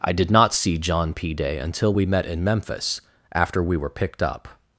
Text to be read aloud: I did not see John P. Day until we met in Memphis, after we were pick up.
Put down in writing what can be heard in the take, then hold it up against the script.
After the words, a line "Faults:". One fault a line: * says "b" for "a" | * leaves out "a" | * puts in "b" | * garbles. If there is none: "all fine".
I did not see John P. Day until we met in Memphis, after we were picked up.
Faults:
* says "picked" for "pick"